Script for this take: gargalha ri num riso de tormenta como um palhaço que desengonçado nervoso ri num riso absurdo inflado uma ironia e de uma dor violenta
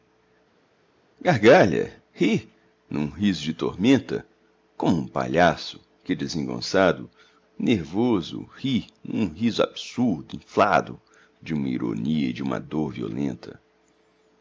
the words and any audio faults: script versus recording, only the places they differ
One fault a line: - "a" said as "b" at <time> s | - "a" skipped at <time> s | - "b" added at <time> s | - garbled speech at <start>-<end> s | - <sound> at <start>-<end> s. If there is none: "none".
- "de" added at 11.4 s